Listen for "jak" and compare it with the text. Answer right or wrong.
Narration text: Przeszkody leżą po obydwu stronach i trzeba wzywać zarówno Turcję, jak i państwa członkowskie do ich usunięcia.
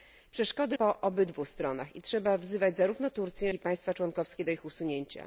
wrong